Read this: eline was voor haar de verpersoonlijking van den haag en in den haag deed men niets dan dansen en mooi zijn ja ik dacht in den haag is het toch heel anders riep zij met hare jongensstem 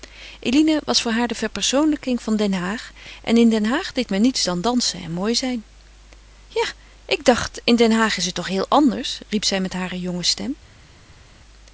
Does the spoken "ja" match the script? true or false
true